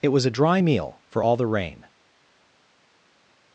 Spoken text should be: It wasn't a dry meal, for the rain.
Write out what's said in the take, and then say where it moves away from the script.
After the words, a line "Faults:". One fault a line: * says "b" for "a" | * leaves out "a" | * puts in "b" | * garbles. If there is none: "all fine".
It was a dry meal, for all the rain.
Faults:
* says "was" for "wasn't"
* puts in "all"